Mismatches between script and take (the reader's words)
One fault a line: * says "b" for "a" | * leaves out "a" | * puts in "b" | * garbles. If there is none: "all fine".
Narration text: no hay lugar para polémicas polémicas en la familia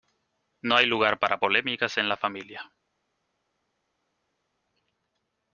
* leaves out "polémicas"